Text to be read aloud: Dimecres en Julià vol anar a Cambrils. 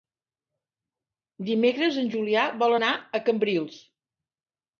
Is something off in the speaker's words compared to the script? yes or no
no